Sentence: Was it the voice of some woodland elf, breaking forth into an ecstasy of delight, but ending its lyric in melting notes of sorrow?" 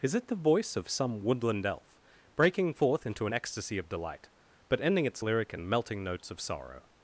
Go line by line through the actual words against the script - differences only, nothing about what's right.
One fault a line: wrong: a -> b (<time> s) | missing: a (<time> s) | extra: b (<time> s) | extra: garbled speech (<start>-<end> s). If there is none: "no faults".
wrong: Was -> Is (0.0 s)